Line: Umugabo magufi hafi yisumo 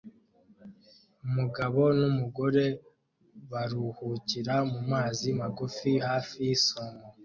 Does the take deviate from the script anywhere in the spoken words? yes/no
yes